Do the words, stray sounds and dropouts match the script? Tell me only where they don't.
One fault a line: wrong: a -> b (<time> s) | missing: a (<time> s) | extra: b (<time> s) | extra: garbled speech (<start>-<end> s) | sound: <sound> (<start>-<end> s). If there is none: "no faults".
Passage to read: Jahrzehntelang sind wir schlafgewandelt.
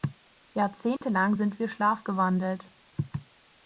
sound: dropout (1.0-1.0 s)